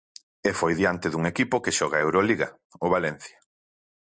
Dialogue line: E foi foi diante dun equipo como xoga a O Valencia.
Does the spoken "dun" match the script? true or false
true